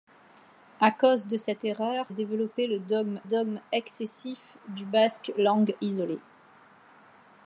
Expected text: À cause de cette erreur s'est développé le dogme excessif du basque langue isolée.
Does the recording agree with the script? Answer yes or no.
no